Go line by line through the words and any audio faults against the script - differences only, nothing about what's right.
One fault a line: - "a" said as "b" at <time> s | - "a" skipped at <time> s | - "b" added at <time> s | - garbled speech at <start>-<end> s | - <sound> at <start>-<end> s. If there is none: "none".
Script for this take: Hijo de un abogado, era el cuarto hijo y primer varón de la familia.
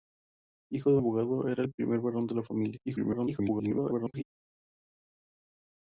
- "un" skipped at 1.0 s
- "el cuarto hijo" skipped at 1.6 s
- garbled speech at 2.8-4.2 s